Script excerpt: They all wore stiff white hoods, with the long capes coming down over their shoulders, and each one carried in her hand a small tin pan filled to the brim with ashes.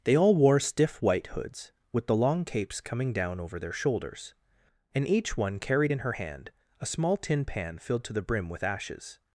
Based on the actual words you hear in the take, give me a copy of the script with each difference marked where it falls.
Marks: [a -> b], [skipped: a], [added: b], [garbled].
They all wore stiff white hoods, with the long capes coming down over their shoulders, and each one carried in her hand a small tin pan filled to the brim with ashes.